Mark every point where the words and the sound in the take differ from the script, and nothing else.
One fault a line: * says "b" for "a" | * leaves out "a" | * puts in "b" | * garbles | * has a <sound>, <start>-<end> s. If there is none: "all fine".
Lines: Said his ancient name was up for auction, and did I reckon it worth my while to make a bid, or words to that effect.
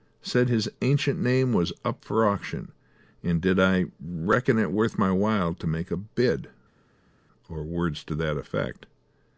all fine